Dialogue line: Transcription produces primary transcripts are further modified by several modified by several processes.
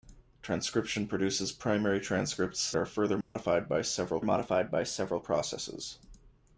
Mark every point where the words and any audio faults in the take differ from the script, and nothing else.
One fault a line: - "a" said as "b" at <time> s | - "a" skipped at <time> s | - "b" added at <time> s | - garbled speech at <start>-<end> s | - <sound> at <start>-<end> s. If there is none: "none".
- dropout at 3.2-3.4 s